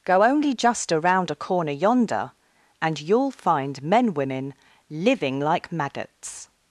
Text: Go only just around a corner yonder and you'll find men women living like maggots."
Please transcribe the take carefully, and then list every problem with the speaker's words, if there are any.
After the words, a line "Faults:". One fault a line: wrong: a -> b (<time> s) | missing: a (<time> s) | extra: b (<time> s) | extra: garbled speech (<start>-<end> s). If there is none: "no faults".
Go only just around a corner yonder and you'll find men women living like maggots."
Faults:
no faults